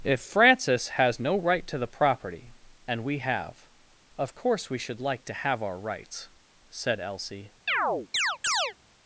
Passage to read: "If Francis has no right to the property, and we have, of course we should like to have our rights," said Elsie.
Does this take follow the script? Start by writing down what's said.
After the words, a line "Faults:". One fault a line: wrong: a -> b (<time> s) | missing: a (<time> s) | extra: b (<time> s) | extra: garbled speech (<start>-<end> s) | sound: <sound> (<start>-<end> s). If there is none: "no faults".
"If Francis has no right to the property, and we have, of course we should like to have our rights," said Elsie.
Faults:
sound: chirp (7.7-8.7 s)